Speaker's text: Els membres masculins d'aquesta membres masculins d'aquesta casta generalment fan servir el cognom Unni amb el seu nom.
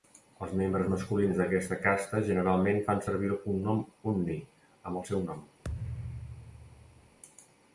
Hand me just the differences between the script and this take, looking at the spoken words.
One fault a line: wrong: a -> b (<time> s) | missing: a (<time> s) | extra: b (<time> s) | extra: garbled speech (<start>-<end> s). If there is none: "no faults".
missing: membres masculins d'aquesta (1.8 s)